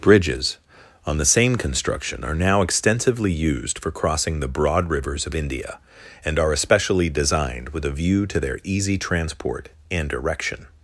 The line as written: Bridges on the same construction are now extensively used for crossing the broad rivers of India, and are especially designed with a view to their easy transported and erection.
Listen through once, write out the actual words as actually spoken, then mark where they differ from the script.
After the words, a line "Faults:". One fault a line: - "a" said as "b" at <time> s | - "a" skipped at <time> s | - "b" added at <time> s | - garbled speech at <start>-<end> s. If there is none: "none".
Bridges on the same construction are now extensively used for crossing the broad rivers of India, and are especially designed with a view to their easy transport and erection.
Faults:
- "transported" said as "transport" at 9.0 s